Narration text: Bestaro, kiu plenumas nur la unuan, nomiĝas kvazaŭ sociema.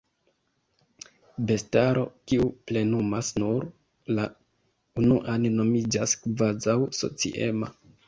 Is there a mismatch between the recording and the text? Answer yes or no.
no